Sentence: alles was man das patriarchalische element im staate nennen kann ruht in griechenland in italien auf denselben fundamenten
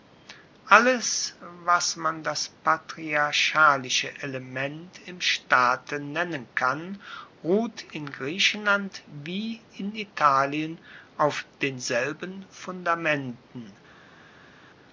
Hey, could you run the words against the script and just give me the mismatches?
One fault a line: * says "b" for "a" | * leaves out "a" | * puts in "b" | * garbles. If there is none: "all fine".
* puts in "wie"